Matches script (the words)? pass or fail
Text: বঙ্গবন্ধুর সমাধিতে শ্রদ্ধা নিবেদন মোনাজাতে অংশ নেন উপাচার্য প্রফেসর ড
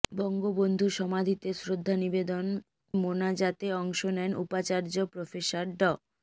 pass